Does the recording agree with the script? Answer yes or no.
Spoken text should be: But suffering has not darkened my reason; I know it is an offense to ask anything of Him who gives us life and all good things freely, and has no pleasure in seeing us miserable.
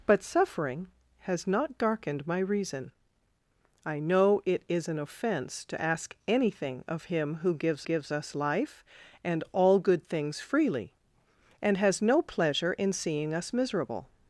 no